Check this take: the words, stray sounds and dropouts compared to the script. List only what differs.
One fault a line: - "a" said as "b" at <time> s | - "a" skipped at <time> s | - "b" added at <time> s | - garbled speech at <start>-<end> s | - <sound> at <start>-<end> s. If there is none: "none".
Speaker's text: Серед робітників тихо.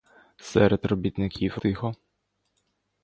none